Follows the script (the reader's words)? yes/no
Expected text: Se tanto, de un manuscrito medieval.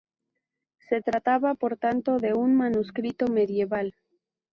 no